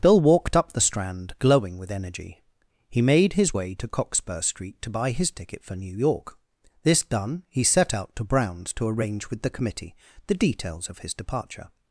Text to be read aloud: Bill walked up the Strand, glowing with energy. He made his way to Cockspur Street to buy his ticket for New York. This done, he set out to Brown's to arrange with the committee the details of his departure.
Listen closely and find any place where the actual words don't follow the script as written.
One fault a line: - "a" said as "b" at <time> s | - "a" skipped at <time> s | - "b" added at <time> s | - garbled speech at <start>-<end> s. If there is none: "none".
none